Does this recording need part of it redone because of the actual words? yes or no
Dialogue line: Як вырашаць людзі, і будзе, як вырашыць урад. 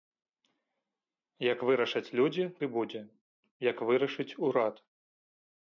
no